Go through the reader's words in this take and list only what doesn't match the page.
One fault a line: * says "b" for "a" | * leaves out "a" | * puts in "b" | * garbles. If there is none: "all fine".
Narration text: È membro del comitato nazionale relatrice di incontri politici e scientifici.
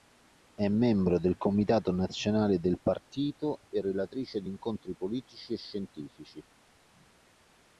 * puts in "del partito e"